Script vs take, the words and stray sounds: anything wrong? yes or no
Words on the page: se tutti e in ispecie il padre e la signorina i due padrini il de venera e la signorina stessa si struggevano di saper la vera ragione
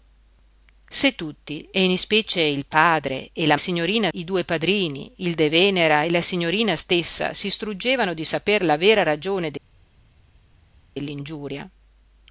no